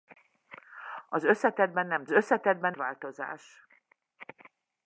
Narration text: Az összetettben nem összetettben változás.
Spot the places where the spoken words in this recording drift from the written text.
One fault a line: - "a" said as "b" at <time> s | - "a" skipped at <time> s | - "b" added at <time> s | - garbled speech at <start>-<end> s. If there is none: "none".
none